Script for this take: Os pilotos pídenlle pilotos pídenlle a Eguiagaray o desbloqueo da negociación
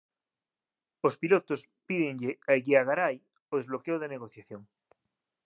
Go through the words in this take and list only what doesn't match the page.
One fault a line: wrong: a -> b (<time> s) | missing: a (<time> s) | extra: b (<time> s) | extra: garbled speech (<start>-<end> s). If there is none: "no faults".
missing: pilotos pídenlle (2.3 s)